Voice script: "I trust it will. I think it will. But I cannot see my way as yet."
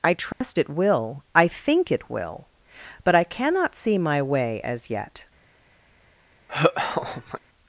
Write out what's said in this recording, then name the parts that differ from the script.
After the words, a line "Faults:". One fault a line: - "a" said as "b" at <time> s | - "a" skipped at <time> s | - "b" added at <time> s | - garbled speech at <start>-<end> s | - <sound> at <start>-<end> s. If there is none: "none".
"I trust it will. I think it will. But I cannot see my way as yet."
Faults:
- dropout at 0.3-0.4 s
- laugh at 6.5-7.4 s